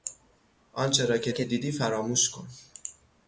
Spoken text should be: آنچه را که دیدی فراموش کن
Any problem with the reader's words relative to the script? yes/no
yes